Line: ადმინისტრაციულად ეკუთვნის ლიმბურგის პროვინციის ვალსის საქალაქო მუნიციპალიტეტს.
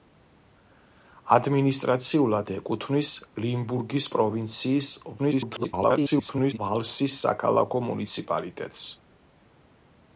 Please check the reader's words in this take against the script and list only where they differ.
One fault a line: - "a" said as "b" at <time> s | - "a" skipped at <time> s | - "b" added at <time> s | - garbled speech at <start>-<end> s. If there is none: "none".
- garbled speech at 5.2-6.6 s